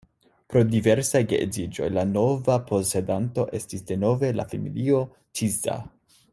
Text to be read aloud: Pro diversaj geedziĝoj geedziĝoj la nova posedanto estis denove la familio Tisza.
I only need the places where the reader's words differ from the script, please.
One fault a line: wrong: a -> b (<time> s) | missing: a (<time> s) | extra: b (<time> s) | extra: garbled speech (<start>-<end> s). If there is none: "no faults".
missing: geedziĝoj (1.9 s)